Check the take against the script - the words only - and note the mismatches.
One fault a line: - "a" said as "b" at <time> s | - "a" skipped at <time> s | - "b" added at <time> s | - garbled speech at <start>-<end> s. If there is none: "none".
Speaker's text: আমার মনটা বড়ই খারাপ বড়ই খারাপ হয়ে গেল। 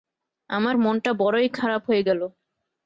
- "বড়ই খারাপ" skipped at 1.8 s